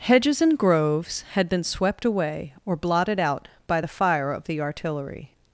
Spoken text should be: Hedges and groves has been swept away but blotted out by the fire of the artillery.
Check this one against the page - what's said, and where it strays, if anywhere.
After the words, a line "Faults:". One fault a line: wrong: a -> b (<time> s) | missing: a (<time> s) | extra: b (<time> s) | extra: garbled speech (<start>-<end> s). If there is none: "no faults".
Hedges and groves had been swept away or blotted out by the fire of the artillery.
Faults:
wrong: has -> had (1.3 s)
wrong: but -> or (2.6 s)